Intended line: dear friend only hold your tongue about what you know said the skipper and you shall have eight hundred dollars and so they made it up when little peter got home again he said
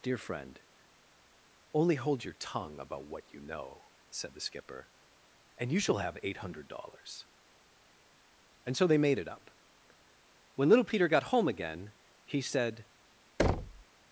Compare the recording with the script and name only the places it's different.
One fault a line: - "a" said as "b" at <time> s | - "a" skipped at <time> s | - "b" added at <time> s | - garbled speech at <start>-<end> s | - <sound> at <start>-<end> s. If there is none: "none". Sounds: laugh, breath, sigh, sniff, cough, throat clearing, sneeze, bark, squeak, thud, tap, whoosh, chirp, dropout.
- thud at 13.4-13.8 s